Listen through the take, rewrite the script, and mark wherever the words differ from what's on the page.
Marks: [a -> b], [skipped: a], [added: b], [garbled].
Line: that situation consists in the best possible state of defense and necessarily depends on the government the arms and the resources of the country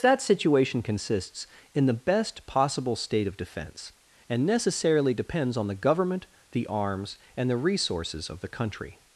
that situation consists in the best possible state of defense and necessarily depends on the government the arms and the resources of the country